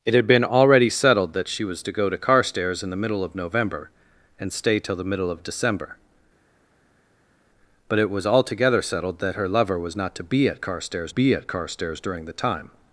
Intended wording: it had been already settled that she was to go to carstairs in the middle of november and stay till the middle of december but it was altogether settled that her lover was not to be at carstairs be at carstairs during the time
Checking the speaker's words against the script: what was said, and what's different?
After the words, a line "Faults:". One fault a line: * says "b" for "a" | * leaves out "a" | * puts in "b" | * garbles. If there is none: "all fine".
it had been already settled that she was to go to carstairs in the middle of november and stay till the middle of december but it was altogether settled that her lover was not to be at carstairs be at carstairs during the time
Faults:
all fine